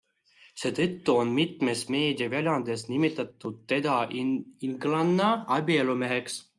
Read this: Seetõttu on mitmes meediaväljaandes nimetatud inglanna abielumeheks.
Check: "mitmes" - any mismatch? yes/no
no